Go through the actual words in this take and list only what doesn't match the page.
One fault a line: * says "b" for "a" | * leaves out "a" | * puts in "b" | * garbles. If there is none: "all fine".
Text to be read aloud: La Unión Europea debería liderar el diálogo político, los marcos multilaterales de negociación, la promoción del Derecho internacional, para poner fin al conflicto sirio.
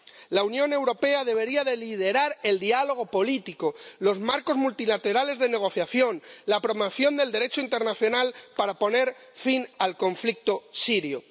all fine